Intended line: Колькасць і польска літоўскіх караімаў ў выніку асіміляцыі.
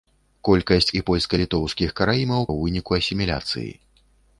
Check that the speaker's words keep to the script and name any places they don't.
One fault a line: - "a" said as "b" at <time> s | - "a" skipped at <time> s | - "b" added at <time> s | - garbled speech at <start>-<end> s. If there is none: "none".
none